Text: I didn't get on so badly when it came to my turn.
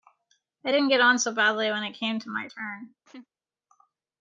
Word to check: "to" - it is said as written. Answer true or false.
true